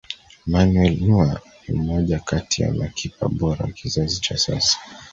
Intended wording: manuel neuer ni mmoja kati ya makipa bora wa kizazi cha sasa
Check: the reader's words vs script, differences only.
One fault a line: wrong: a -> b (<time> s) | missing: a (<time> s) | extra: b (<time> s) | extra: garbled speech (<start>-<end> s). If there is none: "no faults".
no faults